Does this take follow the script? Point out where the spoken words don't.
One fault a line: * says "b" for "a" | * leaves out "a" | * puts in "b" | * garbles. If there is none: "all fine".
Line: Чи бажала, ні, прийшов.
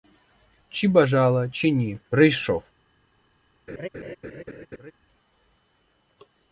* puts in "чи"